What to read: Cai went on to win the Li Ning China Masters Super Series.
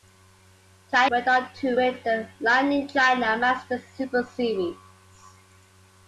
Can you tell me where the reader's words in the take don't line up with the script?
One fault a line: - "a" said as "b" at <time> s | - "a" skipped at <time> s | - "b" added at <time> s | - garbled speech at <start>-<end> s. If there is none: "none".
none